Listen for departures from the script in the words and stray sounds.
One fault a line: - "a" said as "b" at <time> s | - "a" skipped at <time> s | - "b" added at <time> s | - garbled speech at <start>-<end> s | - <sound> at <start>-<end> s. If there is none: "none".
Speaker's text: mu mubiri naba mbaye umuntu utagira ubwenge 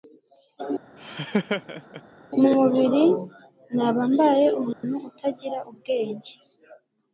- laugh at 1.0-2.0 s
- dropout at 4.7-4.8 s